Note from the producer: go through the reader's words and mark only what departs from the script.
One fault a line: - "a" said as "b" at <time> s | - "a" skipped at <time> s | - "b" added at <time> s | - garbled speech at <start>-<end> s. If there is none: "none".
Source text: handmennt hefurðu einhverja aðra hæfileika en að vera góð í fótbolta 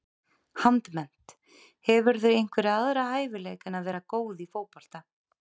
none